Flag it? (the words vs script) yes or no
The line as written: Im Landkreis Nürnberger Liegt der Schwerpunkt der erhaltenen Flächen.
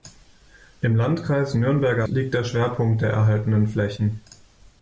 no